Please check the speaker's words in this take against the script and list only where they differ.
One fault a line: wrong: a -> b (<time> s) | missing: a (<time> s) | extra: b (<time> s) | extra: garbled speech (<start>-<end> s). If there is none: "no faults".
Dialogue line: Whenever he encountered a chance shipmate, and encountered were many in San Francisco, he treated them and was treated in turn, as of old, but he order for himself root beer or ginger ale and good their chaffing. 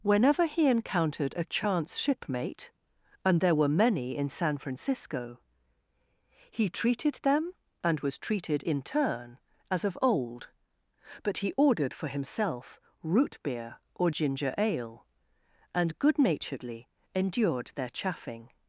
wrong: encountered -> there (3.4 s)
wrong: order -> ordered (11.6 s)
extra: naturedly endured (16.2 s)